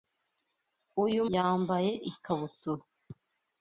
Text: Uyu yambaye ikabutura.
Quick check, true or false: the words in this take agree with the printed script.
true